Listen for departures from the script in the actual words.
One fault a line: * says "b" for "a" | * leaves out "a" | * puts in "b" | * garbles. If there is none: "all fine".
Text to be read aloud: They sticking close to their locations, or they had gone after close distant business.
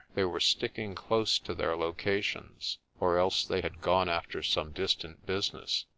* puts in "were"
* puts in "else"
* says "some" for "close"